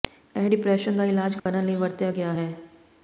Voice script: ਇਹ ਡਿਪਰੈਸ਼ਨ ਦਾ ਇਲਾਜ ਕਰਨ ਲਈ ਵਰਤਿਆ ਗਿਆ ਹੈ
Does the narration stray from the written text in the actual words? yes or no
no